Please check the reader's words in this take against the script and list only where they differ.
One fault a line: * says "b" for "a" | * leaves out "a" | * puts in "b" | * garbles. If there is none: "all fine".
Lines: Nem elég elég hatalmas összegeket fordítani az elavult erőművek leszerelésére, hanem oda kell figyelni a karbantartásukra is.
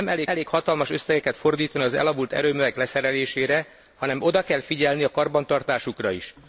all fine